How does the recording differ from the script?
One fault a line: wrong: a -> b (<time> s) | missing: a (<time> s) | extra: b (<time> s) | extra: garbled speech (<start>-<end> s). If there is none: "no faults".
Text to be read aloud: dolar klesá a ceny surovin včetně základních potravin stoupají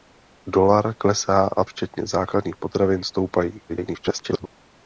missing: ceny surovin (1.6 s)
extra: garbled speech (3.7-4.5 s)